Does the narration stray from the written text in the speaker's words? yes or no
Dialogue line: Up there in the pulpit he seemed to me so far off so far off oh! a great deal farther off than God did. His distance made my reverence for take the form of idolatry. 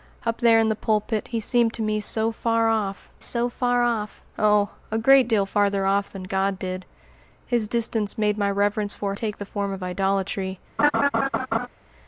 no